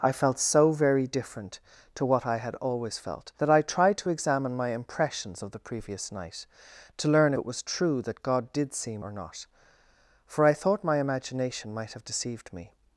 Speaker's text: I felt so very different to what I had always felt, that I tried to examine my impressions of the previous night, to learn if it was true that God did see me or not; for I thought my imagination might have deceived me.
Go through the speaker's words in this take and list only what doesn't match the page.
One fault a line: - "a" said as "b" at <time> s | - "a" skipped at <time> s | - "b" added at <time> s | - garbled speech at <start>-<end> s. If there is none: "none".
- "if" skipped at 7.3 s
- "me" skipped at 9.0 s